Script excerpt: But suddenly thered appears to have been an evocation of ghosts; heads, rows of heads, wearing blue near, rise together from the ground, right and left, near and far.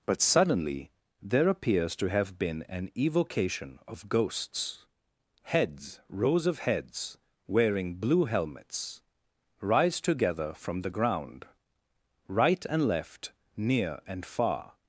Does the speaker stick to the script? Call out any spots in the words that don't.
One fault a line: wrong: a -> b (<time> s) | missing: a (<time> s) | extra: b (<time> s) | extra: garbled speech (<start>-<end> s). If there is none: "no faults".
wrong: thered -> there (1.2 s)
wrong: near -> helmets (8.2 s)